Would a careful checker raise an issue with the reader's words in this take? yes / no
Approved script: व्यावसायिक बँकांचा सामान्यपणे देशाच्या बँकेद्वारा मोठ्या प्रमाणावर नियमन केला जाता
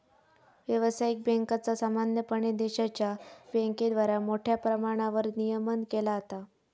no